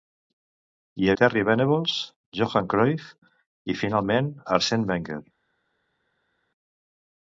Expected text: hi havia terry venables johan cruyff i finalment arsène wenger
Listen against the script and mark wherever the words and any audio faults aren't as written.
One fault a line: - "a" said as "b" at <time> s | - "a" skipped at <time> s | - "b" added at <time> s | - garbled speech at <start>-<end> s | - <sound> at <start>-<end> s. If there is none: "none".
- "havia" skipped at 1.1 s